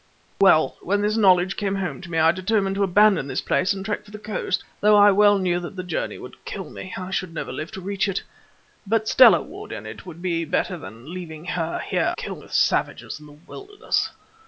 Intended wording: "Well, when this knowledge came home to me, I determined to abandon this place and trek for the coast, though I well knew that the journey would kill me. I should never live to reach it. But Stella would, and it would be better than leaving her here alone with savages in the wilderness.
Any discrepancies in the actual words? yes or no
yes